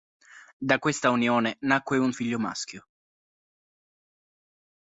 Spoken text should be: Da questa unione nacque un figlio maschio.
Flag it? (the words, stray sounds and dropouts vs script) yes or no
no